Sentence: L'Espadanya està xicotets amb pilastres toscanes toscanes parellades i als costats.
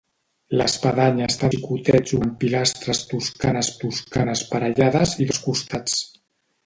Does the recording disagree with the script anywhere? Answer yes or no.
no